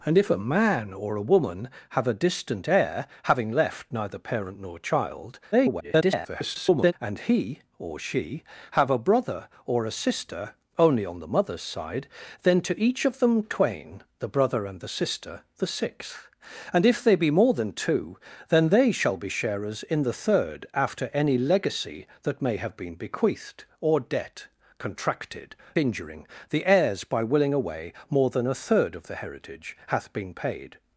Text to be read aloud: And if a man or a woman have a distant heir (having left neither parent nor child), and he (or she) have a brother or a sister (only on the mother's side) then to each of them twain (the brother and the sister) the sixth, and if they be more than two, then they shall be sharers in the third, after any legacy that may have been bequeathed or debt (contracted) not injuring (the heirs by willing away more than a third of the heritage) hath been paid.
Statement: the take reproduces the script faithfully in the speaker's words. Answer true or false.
false